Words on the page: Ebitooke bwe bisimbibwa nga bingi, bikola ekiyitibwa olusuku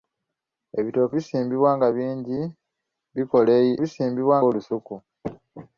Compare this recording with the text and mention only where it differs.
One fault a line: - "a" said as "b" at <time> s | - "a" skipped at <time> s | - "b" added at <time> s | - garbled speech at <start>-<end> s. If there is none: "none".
- "bwe" skipped at 1.1 s
- "ekiyitibwa" said as "bisimbibwa" at 3.8 s